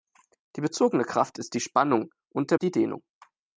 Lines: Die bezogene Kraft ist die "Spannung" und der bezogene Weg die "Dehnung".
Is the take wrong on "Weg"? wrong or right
wrong